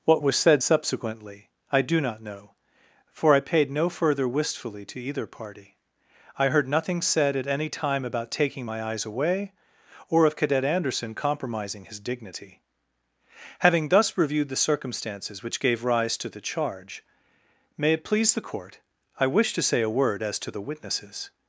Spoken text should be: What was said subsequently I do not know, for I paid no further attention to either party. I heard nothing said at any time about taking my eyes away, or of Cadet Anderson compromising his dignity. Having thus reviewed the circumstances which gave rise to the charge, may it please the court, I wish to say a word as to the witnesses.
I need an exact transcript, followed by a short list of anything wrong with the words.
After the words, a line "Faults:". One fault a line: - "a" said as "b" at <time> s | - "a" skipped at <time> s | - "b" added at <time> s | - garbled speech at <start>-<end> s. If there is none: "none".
What was said subsequently I do not know, for I paid no further wistfully to either party. I heard nothing said at any time about taking my eyes away, or of Cadet Anderson compromising his dignity. Having thus reviewed the circumstances which gave rise to the charge, may it please the court, I wish to say a word as to the witnesses.
Faults:
- "attention" said as "wistfully" at 4.3 s